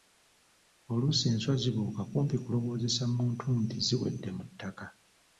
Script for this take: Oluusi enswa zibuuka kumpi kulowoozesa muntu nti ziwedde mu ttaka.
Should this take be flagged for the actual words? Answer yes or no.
no